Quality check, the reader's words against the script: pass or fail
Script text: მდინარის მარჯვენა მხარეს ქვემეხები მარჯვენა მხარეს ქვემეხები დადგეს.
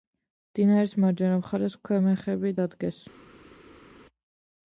fail